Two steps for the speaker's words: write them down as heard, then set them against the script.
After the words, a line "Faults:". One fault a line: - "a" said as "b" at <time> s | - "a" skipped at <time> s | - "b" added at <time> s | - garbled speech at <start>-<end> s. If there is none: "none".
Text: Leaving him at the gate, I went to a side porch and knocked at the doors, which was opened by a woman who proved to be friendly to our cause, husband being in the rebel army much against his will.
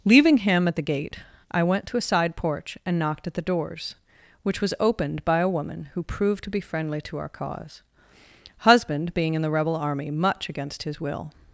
Leaving him at the gate, I went to a side porch and knocked at the doors, which was opened by a woman who proved to be friendly to our cause, husband being in the rebel army much against his will.
Faults:
none